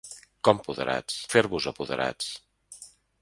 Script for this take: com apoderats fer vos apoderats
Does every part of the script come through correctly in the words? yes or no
yes